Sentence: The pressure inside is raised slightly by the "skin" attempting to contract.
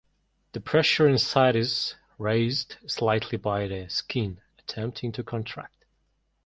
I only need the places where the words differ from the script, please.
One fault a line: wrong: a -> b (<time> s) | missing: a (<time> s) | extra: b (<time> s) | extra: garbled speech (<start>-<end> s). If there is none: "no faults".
no faults